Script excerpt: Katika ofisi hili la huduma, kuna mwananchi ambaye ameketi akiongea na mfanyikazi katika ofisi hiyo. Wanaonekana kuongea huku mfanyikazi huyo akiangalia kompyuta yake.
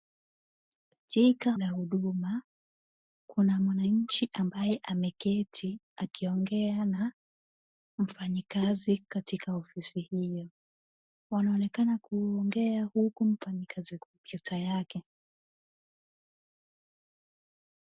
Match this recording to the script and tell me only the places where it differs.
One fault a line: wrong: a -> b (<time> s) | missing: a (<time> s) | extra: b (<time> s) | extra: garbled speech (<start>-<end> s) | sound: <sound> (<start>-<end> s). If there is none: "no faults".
missing: ofisi hili (1.6 s)
missing: huyo akiangalia (14.0 s)